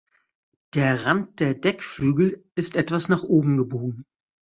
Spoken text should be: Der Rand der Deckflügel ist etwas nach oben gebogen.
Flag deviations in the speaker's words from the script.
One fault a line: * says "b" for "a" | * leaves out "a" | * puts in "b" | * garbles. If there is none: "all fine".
all fine